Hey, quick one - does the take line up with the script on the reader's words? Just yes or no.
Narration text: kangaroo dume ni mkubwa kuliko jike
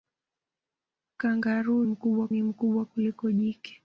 no